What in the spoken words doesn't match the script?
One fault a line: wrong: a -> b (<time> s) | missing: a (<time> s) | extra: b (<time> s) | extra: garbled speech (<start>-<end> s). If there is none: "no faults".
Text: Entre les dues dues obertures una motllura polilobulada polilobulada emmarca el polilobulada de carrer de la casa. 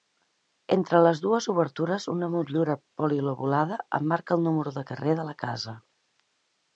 missing: dues (1.5 s)
missing: polilobulada (3.8 s)
wrong: polilobulada -> número (4.5 s)